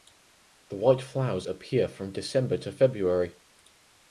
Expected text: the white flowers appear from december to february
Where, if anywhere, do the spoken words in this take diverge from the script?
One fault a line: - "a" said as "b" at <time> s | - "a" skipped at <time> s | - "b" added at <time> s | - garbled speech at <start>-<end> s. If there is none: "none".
none